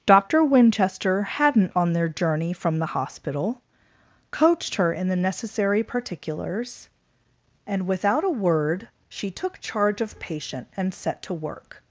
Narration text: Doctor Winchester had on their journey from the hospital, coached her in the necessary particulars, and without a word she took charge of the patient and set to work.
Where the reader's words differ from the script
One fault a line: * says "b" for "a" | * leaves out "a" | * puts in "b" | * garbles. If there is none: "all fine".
* says "hadn't" for "had"
* leaves out "the"